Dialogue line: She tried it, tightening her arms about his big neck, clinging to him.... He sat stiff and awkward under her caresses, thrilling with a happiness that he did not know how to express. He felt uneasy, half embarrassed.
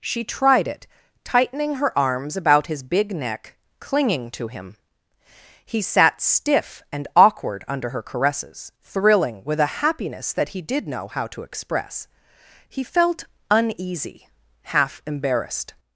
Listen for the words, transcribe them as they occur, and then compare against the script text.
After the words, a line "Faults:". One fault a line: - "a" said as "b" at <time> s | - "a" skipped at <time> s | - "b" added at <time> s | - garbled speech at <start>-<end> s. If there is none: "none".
She tried it, tightening her arms about his big neck, clinging to him.... He sat stiff and awkward under her caresses, thrilling with a happiness that he did know how to express. He felt uneasy, half embarrassed.
Faults:
- "not" skipped at 10.9 s